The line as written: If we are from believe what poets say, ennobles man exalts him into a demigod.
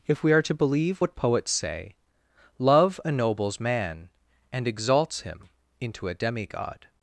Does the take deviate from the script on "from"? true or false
true